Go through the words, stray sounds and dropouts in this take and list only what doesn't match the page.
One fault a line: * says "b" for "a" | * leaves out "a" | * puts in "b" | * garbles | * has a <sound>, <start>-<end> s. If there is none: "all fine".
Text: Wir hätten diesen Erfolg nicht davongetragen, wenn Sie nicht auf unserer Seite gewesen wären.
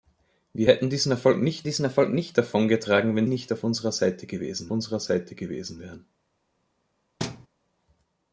* puts in "diesen Erfolg nicht"
* leaves out "Sie"
* puts in "unserer Seite gewesen"
* has a thud, 7.2-7.5 s